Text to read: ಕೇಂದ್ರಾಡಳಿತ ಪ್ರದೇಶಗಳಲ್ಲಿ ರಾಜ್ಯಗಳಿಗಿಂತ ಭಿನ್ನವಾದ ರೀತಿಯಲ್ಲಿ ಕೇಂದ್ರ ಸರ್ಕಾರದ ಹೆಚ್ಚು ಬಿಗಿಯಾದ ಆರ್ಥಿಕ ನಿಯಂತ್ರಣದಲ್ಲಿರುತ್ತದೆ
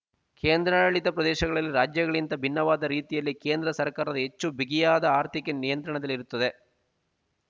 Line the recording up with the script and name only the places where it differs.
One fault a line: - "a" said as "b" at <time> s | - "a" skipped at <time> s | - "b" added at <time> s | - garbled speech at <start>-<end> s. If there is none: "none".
none